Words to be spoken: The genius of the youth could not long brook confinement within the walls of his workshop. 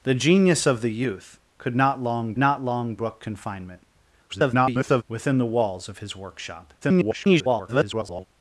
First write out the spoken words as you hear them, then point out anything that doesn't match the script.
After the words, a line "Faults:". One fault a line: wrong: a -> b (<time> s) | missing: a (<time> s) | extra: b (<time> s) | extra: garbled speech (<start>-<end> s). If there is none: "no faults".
The genius of the youth could not long not long brook confinement [garbled] within the walls of his workshop. [garbled]
Faults:
extra: not long (2.4 s)
extra: garbled speech (4.3-5.0 s)
extra: garbled speech (6.8-8.3 s)